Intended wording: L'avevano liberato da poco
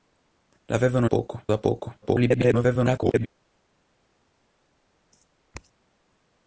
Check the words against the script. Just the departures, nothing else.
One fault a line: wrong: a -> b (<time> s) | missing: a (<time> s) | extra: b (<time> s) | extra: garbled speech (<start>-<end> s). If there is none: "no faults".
wrong: liberato -> poco (1.0 s)
extra: garbled speech (2.0-3.3 s)